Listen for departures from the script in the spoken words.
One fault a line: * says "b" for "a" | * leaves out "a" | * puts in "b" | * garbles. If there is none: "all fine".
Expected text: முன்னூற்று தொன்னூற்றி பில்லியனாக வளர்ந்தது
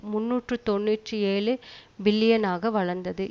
* puts in "ஏழு"